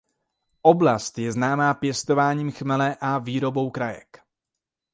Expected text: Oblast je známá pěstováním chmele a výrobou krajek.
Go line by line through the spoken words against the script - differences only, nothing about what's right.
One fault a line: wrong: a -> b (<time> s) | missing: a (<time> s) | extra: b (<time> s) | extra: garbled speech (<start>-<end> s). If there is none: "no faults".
no faults